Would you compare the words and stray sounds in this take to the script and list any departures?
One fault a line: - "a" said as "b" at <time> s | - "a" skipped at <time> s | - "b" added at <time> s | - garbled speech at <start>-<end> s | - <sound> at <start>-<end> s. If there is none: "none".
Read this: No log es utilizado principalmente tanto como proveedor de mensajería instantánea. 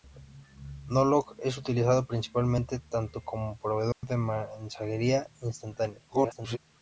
- dropout at 3.9-4.0 s
- garbled speech at 6.1-6.6 s